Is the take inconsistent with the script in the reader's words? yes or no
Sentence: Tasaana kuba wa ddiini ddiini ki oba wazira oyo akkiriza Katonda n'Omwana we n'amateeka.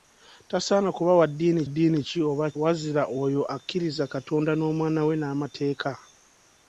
no